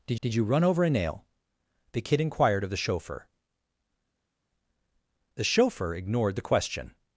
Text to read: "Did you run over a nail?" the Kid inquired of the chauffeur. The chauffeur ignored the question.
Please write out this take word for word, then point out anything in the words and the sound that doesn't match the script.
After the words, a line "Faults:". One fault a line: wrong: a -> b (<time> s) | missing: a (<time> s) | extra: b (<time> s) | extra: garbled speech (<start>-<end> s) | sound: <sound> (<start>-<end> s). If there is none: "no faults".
"Did did you run over a nail?" the Kid inquired of the chauffeur. The chauffeur ignored the question.
Faults:
extra: did (0.2 s)